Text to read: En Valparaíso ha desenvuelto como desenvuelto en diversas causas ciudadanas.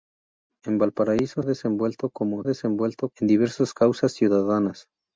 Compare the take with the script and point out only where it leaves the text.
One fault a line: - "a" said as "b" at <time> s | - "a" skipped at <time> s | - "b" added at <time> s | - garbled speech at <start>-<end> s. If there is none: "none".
none